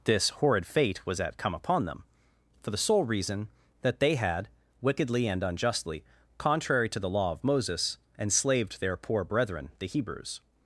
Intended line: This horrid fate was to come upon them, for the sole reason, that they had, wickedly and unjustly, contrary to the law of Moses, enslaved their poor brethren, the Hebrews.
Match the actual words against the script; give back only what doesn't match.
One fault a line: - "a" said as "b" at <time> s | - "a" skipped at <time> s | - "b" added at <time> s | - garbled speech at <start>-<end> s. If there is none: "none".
- "to" said as "at" at 1.2 s